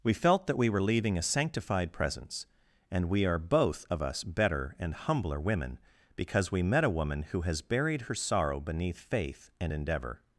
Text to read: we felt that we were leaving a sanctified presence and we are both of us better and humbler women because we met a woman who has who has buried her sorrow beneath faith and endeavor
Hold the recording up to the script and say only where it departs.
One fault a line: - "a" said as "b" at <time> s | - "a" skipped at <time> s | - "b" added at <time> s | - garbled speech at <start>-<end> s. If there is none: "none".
- "who has" skipped at 7.6 s